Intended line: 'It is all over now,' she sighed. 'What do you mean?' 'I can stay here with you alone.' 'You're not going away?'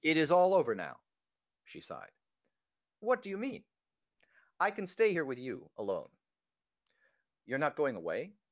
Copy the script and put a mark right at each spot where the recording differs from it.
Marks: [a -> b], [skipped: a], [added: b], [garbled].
'It is all over now,' she sighed. 'What do you mean?' 'I can stay here with you alone.' 'You're not going away?'